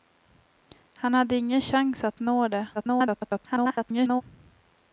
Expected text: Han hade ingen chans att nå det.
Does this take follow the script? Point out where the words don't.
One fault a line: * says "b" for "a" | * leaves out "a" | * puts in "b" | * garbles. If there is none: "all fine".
* garbles